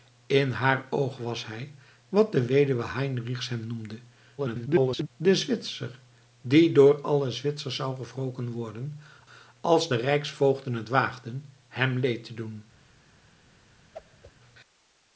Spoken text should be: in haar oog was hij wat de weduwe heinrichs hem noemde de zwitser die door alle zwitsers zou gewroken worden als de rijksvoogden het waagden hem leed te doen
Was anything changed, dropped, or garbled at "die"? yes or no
no